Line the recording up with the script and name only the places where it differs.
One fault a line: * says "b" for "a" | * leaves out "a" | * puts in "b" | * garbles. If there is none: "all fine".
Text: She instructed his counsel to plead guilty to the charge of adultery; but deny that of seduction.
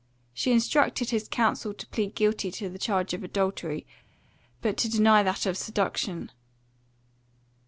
* puts in "to"